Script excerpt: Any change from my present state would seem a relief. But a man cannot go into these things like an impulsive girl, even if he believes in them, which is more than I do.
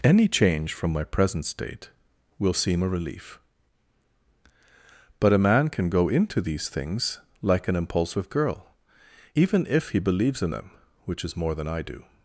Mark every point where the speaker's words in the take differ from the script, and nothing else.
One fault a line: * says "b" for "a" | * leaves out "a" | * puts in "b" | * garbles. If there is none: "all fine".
* says "will" for "would"
* says "can" for "cannot"